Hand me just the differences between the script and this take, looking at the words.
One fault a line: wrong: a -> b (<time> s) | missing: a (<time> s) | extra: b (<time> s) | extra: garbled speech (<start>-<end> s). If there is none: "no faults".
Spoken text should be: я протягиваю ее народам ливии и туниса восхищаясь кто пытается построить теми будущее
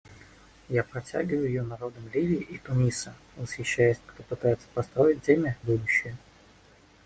no faults